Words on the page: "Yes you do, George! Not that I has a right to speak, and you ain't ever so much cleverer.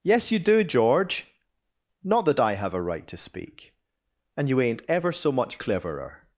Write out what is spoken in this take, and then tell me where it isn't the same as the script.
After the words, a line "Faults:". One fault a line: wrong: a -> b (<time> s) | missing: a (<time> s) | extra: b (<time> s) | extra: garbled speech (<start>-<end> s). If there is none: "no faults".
"Yes you do, George! Not that I have a right to speak, and you ain't ever so much cleverer.
Faults:
wrong: has -> have (2.5 s)